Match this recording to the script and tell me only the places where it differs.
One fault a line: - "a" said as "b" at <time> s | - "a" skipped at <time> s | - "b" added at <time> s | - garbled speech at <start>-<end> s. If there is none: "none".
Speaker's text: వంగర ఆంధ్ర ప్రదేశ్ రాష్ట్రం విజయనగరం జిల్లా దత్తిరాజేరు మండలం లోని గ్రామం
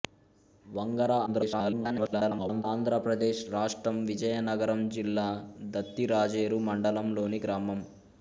- garbled speech at 1.3-2.6 s